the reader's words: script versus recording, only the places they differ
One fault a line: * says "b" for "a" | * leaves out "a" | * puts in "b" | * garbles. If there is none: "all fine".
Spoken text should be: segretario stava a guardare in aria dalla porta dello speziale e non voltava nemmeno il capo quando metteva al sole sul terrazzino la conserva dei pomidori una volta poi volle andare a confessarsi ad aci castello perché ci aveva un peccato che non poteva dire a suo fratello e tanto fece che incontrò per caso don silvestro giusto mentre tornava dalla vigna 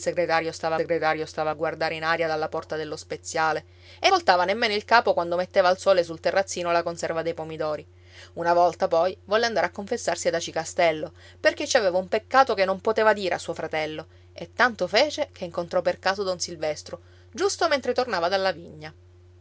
* puts in "segretario stava"
* leaves out "non"